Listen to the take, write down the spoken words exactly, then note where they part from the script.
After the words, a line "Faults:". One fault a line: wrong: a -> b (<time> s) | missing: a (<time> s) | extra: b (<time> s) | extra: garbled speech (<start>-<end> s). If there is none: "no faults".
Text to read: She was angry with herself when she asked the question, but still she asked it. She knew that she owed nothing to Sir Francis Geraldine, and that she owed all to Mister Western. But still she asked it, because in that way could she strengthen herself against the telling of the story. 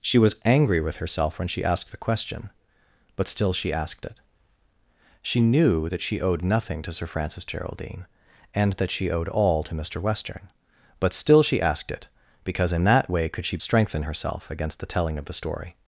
She was angry with herself when she asked the question, but still she asked it. She knew that she owed nothing to Sir Francis Geraldine, and that she owed all to Mister Western. But still she asked it, because in that way could she strengthen herself against the telling of the story.
Faults:
no faults